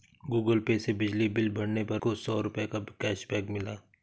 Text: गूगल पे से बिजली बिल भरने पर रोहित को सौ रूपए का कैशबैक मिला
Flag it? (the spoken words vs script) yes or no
yes